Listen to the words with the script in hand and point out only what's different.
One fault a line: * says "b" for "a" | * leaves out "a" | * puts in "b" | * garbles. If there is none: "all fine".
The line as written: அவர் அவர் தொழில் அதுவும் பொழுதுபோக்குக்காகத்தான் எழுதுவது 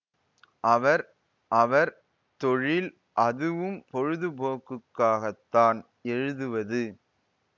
all fine